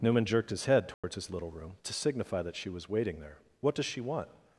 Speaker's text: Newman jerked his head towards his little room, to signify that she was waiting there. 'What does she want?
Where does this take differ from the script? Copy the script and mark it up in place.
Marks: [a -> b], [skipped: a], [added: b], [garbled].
Newman jerked his head towards his little room, to signify that she was waiting there. 'What does she want?